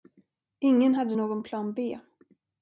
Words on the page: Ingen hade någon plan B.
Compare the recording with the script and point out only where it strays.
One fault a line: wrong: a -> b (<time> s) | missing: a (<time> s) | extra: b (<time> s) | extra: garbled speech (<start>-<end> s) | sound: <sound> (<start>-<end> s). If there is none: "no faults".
no faults